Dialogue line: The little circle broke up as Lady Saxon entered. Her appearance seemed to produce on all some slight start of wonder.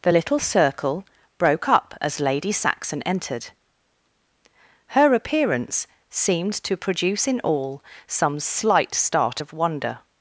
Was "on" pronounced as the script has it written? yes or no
no